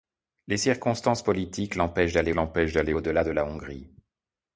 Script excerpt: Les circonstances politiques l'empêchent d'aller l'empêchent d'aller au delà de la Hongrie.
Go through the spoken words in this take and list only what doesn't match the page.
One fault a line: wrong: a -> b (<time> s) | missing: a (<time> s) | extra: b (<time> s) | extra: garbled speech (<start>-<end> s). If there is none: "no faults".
no faults